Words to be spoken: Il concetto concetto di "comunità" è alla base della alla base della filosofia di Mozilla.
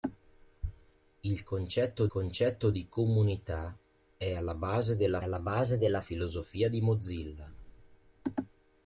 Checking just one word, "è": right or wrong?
right